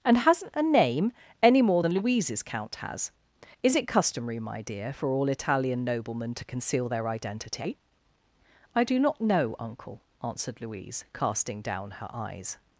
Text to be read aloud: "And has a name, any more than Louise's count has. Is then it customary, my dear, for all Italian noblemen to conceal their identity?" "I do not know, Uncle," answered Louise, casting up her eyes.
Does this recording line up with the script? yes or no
no